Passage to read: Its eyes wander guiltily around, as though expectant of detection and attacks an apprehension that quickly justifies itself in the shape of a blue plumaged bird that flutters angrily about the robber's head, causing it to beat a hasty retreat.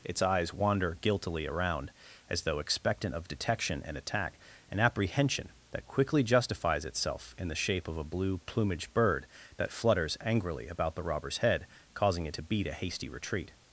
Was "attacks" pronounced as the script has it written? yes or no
no